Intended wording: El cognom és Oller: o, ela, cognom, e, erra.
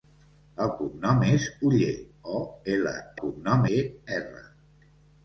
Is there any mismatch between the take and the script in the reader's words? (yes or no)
no